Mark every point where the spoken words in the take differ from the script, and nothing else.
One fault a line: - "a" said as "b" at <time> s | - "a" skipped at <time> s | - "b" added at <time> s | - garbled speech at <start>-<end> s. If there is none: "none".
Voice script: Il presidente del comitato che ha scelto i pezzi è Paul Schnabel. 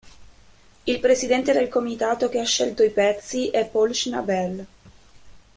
none